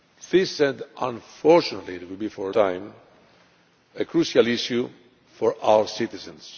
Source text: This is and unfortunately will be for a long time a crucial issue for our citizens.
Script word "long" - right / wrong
wrong